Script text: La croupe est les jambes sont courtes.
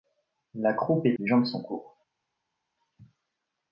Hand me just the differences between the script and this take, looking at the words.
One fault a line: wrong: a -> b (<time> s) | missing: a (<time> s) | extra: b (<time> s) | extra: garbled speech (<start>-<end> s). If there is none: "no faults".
no faults